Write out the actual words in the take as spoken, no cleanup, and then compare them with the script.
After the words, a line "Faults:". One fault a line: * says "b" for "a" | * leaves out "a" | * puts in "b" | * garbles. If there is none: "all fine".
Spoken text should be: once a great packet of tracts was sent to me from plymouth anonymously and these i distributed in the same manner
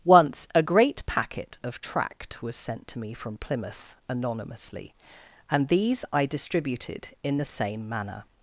once a great packet of tract was sent to me from plymouth anonymously and these i distributed in the same manner
Faults:
* says "tract" for "tracts"